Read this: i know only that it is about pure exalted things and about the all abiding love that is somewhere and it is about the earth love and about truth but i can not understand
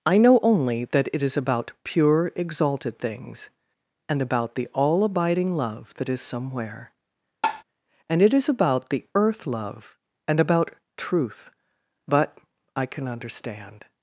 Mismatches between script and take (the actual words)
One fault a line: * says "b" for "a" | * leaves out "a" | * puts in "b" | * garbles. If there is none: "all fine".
* leaves out "not"